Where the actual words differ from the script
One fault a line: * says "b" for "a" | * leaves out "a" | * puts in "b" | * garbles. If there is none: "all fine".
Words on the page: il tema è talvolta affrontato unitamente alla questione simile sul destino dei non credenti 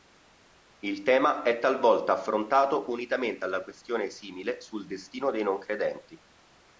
all fine